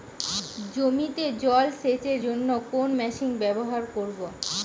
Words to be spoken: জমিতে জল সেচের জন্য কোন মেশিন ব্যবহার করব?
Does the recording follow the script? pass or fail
pass